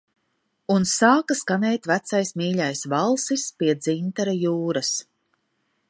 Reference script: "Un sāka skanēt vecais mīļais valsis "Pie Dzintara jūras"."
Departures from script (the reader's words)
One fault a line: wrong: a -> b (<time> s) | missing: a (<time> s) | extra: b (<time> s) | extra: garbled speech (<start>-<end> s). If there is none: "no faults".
no faults